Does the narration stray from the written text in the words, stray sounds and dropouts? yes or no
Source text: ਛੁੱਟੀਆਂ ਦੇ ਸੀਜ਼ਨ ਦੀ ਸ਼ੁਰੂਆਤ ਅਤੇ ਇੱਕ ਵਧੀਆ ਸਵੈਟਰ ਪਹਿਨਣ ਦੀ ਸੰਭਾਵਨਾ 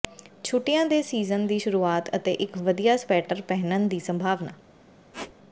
yes